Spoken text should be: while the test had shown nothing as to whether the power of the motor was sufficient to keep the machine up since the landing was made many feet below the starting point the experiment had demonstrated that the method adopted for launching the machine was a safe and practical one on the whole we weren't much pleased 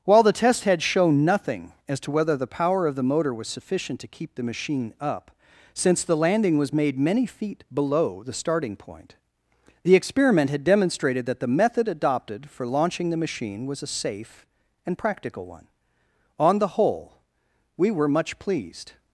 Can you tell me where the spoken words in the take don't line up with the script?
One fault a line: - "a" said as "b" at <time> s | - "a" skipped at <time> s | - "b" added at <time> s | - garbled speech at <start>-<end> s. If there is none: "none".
- "weren't" said as "were" at 17.9 s